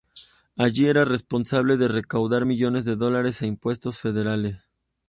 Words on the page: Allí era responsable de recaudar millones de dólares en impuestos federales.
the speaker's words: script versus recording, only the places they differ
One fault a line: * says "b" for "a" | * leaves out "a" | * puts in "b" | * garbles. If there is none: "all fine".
all fine